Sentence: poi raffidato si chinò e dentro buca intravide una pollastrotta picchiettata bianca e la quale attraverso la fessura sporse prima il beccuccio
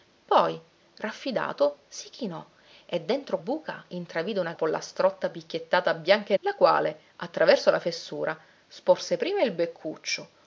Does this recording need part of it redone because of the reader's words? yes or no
no